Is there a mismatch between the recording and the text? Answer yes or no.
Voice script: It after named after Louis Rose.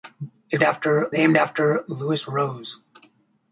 no